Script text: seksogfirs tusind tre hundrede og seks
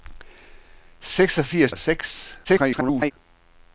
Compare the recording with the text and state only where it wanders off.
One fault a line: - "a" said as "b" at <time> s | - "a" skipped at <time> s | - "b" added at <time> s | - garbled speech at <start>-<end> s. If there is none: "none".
- "tusind tre hundrede" skipped at 1.7 s
- garbled speech at 2.4-3.1 s